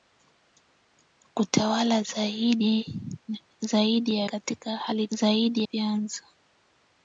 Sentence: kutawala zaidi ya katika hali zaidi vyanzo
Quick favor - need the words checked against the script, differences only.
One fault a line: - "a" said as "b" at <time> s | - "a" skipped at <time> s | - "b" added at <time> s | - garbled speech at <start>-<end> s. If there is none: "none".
none